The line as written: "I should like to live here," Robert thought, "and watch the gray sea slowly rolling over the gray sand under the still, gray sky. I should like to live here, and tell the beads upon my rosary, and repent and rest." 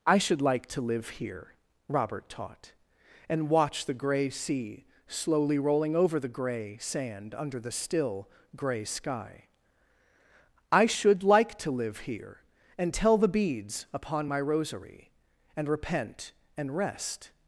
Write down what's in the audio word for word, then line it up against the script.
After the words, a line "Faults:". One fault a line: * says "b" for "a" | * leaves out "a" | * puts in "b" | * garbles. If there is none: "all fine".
"I should like to live here," Robert taught, "and watch the gray sea slowly rolling over the gray sand under the still, gray sky. I should like to live here, and tell the beads upon my rosary, and repent and rest."
Faults:
* says "taught" for "thought"